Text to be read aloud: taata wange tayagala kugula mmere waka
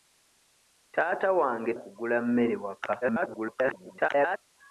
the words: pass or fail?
fail